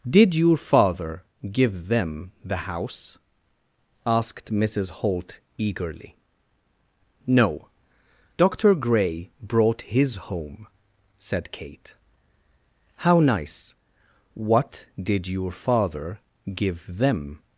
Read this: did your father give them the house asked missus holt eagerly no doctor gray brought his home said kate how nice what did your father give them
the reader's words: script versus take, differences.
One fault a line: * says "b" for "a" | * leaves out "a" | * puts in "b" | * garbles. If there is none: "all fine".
all fine